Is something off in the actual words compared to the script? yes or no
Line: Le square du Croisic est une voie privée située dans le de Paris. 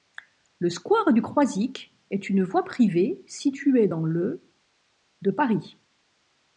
no